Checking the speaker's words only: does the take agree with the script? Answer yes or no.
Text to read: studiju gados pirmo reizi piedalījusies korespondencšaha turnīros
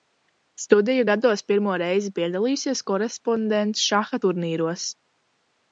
yes